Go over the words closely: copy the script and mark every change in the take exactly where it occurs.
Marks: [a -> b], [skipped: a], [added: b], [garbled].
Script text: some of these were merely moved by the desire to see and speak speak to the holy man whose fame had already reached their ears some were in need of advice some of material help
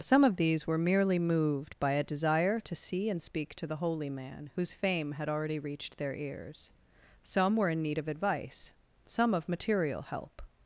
some of these were merely moved by [the -> a] desire to see and speak [skipped: speak] to the holy man whose fame had already reached their ears some were in need of advice some of material help